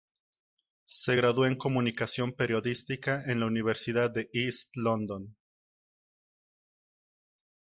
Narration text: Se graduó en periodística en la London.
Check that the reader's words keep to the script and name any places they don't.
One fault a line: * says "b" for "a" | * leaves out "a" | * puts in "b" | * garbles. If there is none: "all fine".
* puts in "comunicación"
* puts in "universidad de East"